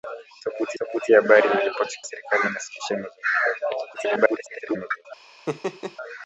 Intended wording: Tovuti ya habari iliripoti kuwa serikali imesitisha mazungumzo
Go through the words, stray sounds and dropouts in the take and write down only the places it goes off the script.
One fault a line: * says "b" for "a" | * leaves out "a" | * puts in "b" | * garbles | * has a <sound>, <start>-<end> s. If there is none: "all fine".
* puts in "tovuti"
* leaves out "kuwa"
* garbles
* has a laugh, 5.5-6.0 s